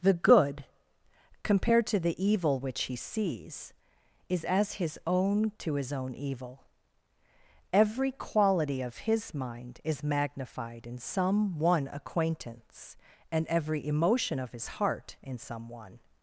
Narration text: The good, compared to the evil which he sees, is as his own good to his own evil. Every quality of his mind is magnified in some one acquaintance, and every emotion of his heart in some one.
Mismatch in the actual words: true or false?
true